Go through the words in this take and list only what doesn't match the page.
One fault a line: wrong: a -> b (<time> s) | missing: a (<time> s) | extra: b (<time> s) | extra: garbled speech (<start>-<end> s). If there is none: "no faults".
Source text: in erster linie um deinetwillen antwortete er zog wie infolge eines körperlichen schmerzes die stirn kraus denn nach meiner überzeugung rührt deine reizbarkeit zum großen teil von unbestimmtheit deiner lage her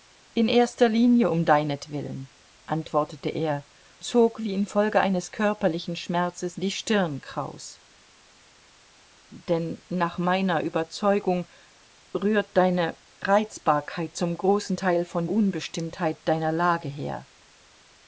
no faults